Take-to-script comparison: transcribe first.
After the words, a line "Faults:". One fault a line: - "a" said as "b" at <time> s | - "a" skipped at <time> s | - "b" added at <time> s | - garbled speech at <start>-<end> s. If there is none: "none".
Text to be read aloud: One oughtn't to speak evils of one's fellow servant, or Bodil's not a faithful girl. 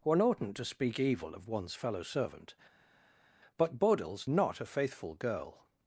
One oughtn't to speak evil of one's fellow servant, but Bodil's not a faithful girl.
Faults:
- "evils" said as "evil" at 1.0 s
- "or" said as "but" at 3.6 s